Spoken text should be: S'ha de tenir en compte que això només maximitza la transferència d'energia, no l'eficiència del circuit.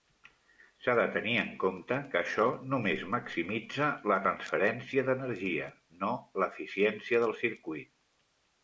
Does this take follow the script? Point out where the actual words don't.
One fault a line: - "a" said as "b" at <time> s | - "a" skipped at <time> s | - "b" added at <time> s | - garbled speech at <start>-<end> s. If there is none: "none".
none